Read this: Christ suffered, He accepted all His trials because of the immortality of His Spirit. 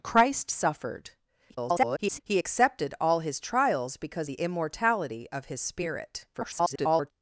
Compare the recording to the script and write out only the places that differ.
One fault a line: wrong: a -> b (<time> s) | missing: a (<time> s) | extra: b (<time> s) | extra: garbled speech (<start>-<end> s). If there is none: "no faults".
extra: garbled speech (1.5-2.2 s)
missing: of (4.3 s)
extra: garbled speech (6.3-7.1 s)